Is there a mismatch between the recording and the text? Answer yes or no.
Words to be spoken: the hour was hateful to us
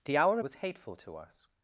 no